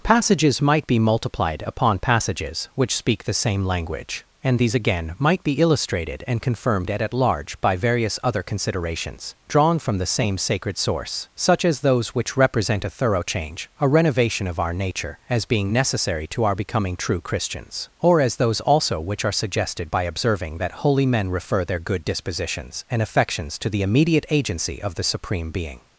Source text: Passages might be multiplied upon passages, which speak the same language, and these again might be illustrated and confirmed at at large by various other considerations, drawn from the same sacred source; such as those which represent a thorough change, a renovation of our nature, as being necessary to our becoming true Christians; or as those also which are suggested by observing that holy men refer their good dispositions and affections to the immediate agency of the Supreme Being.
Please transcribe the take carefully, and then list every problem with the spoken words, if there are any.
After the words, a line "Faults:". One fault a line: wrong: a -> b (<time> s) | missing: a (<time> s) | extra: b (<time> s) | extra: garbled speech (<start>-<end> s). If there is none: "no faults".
Passages might be multiplied upon passages, which speak the same language, and these again might be illustrated and confirmed at at large by various other considerations, drawn from the same sacred source; such as those which represent a thorough change, a renovation of our nature, as being necessary to our becoming true Christians; or as those also which are suggested by observing that holy men refer their good dispositions and affections to the immediate agency of the Supreme Being.
Faults:
no faults